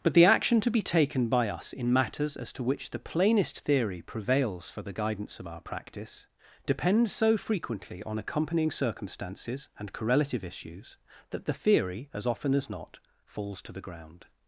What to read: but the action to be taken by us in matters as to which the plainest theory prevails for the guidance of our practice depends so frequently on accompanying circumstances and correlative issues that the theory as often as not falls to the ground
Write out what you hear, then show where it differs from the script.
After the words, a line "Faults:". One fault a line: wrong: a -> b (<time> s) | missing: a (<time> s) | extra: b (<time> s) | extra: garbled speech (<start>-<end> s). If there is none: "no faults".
but the action to be taken by us in matters as to which the plainest theory prevails for the guidance of our practice depends so frequently on accompanying circumstances and correlative issues that the theory as often as not falls to the ground
Faults:
no faults